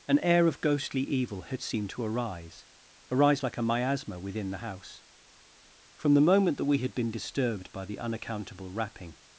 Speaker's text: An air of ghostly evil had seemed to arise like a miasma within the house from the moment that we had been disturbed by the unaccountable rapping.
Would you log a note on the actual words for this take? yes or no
yes